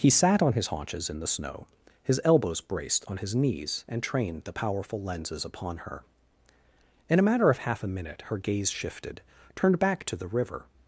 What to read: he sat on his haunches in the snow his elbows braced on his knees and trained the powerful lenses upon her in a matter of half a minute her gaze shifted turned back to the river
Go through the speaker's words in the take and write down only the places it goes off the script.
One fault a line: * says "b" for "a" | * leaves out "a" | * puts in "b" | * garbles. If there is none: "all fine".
all fine